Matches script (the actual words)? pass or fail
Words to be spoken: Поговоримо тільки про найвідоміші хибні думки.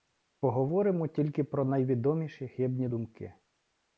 pass